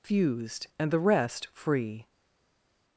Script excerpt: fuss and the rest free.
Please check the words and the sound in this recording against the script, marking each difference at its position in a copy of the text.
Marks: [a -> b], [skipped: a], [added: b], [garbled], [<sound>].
[fuss -> fused] and the rest free.